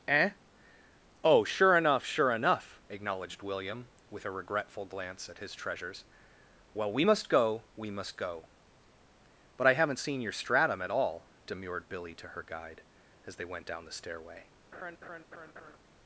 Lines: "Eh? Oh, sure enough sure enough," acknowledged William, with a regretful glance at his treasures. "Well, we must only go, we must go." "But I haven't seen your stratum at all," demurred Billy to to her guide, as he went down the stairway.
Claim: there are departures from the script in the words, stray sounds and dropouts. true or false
true